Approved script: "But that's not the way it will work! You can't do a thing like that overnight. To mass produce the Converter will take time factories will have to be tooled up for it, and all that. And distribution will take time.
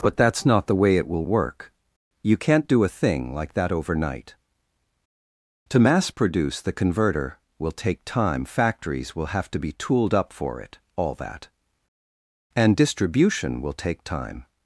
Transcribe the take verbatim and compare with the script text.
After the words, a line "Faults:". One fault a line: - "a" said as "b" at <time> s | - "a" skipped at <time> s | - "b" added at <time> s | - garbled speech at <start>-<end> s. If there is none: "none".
"But that's not the way it will work! You can't do a thing like that overnight. To mass produce the Converter will take time factories will have to be tooled up for it, all that. And distribution will take time.
Faults:
- "and" skipped at 10.8 s